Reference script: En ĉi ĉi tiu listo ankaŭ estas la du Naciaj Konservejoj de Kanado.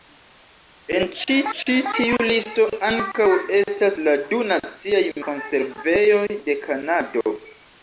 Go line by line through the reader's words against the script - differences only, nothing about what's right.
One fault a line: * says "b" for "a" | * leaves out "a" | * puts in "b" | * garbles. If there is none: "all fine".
all fine